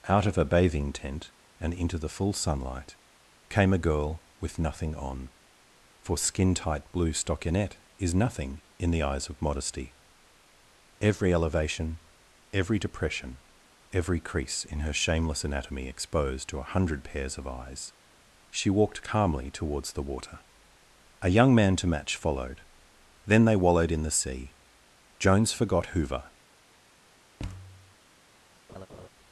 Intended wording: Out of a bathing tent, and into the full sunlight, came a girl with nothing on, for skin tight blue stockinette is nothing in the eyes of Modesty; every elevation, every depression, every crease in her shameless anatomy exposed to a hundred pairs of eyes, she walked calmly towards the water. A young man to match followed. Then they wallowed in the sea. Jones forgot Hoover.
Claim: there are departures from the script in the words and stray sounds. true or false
true